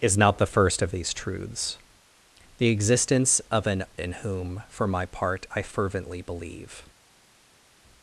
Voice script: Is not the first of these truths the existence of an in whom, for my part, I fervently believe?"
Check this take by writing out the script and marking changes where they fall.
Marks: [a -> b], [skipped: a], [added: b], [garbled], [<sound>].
Is not the first of these truths the existence of an in whom, for my part, I fervently believe?"